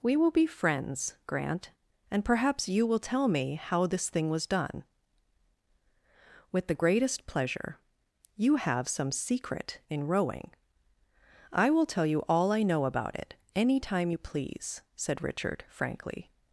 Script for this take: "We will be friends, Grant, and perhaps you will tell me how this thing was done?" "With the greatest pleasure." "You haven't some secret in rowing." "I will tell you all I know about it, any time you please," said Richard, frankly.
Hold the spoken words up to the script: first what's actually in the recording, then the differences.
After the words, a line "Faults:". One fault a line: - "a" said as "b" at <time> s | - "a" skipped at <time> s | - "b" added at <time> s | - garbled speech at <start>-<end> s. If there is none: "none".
"We will be friends, Grant, and perhaps you will tell me how this thing was done?" "With the greatest pleasure." "You have some secret in rowing." "I will tell you all I know about it, any time you please," said Richard, frankly.
Faults:
- "haven't" said as "have" at 8.6 s